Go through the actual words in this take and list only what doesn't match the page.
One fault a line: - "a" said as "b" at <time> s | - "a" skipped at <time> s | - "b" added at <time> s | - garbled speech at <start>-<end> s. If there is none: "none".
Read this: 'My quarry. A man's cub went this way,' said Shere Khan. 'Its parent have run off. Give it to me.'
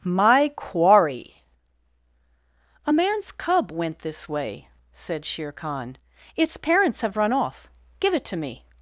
- "parent" said as "parents" at 6.6 s